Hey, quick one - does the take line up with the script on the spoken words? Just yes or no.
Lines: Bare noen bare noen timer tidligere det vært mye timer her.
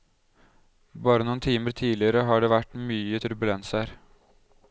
no